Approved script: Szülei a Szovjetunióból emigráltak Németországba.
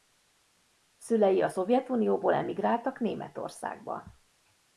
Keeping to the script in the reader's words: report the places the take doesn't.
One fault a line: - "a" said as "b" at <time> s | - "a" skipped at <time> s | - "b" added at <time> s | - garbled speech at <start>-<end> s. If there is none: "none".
none